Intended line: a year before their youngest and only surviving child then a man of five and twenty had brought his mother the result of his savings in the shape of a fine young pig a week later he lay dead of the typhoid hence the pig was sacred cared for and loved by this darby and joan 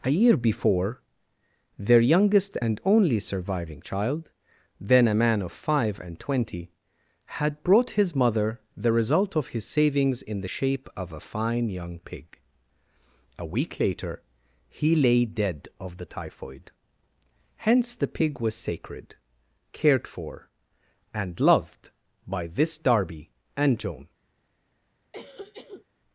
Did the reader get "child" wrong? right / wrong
right